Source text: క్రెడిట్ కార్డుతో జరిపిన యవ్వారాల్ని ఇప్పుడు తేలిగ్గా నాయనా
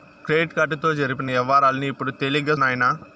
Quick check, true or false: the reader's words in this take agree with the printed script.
true